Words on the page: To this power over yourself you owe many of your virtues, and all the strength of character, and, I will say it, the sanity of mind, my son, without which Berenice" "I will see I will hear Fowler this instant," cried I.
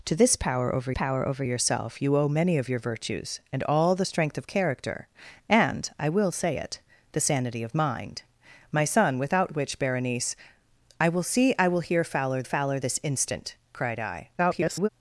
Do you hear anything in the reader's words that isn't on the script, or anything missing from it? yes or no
yes